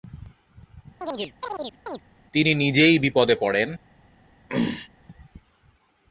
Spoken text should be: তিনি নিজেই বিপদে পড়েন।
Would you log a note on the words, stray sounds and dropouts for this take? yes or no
yes